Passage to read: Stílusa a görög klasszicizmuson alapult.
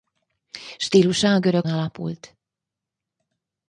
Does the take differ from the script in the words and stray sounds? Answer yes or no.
yes